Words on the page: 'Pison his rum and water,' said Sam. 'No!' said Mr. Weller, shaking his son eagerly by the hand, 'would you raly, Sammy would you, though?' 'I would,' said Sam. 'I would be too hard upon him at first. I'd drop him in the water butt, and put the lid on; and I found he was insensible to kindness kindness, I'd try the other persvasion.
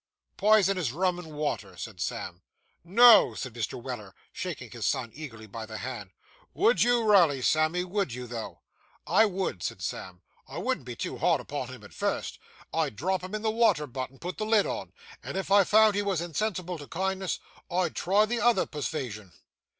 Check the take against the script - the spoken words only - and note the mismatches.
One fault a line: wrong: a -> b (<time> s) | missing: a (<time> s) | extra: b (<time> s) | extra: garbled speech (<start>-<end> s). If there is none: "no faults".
wrong: would -> wouldn't (10.6 s)
extra: if (15.4 s)
missing: kindness (17.4 s)